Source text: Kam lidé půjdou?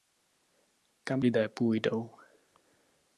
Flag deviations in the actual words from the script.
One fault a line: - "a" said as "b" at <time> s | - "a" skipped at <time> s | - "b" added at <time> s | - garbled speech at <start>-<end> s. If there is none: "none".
none